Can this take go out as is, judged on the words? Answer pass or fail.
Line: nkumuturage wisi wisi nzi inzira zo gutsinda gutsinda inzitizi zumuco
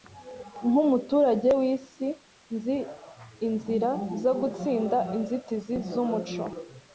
fail